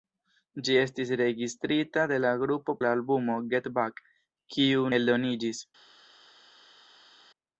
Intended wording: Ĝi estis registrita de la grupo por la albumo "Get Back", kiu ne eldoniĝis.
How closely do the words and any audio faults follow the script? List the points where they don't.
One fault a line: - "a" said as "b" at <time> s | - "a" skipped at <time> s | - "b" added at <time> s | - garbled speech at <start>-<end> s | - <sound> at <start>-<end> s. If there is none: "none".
- "por" skipped at 2.8 s
- "ne" skipped at 4.9 s